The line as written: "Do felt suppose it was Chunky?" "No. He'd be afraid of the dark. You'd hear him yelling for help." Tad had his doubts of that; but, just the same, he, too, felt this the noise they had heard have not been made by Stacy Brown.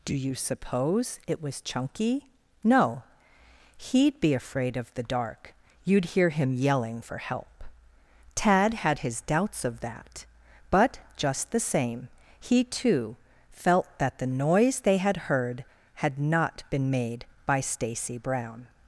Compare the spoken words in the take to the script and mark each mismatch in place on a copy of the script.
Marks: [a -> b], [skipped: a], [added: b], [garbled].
"Do [felt -> you] suppose it was Chunky?" "No. He'd be afraid of the dark. You'd hear him yelling for help." Tad had his doubts of that; but, just the same, he, too, felt [this -> that] the noise they had heard [have -> had] not been made by Stacy Brown.